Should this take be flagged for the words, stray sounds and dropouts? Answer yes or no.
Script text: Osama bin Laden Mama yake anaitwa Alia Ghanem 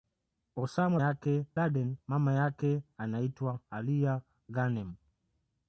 yes